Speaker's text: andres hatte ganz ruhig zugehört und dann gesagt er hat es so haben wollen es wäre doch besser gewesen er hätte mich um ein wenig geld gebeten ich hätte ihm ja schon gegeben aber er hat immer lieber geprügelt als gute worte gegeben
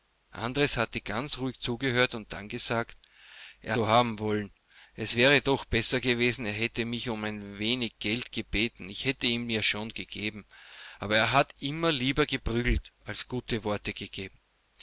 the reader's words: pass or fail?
fail